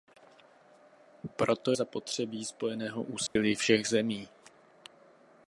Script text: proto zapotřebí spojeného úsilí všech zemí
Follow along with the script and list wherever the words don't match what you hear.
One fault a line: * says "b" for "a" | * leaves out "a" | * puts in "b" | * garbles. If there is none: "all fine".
all fine